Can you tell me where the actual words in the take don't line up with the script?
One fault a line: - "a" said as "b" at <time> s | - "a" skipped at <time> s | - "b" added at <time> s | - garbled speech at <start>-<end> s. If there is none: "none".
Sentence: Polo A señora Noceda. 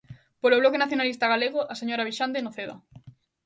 - "Bloque Nacionalista Galego" added at 0.6 s
- "Vixande" added at 2.1 s